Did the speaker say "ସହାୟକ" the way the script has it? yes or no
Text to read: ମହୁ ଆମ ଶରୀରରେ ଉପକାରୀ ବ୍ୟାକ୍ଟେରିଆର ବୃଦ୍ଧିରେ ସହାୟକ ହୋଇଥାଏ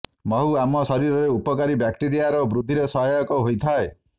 yes